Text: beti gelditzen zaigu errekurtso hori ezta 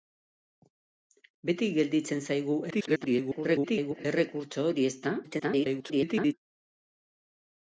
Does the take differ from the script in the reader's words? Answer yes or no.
yes